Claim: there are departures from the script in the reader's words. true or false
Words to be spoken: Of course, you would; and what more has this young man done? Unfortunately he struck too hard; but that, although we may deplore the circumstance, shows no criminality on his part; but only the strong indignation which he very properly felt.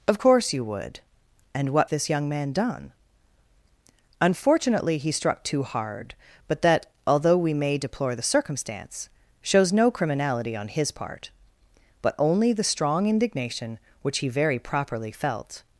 true